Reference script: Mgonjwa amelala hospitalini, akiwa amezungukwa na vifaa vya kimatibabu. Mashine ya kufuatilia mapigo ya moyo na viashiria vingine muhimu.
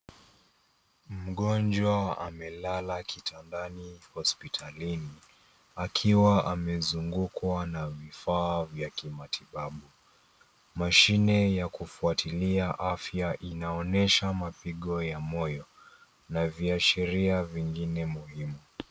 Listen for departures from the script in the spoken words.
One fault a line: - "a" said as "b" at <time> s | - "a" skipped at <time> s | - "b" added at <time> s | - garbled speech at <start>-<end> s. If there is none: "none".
- "kitandani" added at 3.0 s
- "afya inaonyesha" added at 12.8 s